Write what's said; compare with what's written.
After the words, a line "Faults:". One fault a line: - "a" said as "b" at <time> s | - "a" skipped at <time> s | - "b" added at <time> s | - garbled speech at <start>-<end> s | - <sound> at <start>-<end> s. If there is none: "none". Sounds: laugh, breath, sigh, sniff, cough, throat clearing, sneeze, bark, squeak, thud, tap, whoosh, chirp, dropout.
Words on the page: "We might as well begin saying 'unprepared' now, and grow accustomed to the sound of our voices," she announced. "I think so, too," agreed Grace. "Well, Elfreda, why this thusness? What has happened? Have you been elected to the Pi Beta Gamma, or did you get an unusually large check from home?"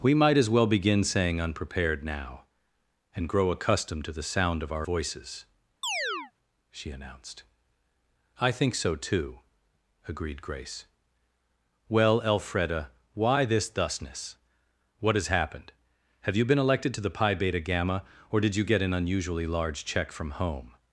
"We might as well begin saying 'unprepared' now, and grow accustomed to the sound of our voices," she announced. "I think so, too," agreed Grace. "Well, Elfreda, why this thusness? What has happened? Have you been elected to the Pi Beta Gamma, or did you get an unusually large check from home?"
Faults:
- chirp at 5.8-6.3 s